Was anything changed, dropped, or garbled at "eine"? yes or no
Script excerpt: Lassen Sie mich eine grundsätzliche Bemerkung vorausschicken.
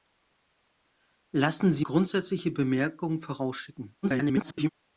yes